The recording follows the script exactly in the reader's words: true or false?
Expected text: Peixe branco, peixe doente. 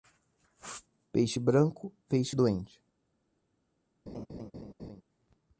true